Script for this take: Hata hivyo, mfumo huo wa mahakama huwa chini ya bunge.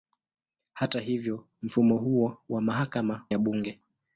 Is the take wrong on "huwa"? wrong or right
wrong